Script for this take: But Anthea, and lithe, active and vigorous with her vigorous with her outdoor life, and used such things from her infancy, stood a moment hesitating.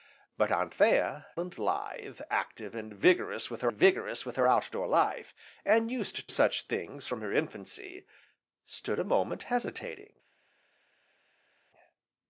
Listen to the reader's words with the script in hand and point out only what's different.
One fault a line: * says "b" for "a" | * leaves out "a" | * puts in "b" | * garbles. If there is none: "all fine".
all fine